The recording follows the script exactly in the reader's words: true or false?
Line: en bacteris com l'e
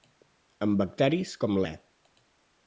true